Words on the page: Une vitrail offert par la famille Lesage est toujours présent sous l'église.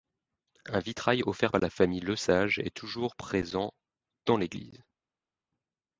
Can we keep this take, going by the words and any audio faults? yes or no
no